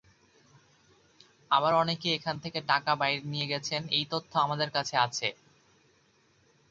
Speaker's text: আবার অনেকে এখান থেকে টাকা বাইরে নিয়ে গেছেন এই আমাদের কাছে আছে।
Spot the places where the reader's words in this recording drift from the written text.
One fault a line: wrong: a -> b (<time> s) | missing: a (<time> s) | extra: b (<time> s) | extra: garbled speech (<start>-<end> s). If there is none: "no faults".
extra: তথ্য (4.1 s)